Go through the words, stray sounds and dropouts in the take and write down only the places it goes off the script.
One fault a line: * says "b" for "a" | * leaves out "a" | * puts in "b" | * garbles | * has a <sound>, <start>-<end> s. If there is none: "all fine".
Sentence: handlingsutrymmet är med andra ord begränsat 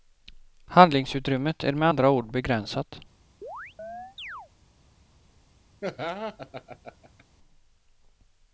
* has a chirp, 3.4-4.5 s
* has a laugh, 5.8-7.2 s